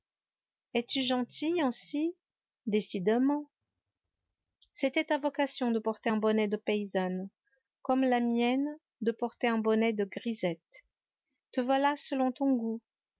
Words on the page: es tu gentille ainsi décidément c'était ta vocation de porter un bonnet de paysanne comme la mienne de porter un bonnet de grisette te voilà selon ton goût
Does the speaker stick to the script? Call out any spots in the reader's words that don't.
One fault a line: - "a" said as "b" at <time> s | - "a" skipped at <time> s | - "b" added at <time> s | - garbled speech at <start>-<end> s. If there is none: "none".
none